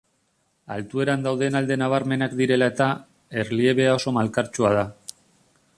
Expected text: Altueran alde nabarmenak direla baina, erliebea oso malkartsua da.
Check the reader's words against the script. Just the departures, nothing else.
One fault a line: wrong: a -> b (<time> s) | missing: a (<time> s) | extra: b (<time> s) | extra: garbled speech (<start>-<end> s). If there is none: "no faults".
extra: dauden (1.3 s)
wrong: baina -> eta (2.7 s)